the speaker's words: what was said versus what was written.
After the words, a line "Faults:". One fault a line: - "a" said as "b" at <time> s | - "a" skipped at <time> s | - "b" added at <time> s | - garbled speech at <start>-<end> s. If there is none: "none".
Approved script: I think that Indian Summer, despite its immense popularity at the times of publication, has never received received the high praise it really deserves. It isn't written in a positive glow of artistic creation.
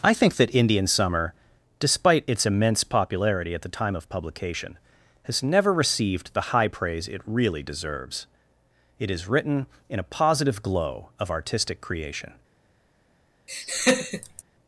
I think that Indian Summer, despite its immense popularity at the time of publication, has never received the high praise it really deserves. It is written in a positive glow of artistic creation.
Faults:
- "times" said as "time" at 3.7 s
- "received" skipped at 6.3 s
- "isn't" said as "is" at 9.1 s